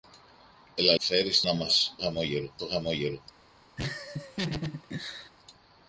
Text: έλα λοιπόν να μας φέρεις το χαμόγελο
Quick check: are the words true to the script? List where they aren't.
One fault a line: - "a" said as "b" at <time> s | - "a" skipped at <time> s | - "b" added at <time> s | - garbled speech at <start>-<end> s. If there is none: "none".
- "λοιπόν" said as "φέρεις" at 1.0 s
- "φέρεις" said as "χαμόγελο" at 2.0 s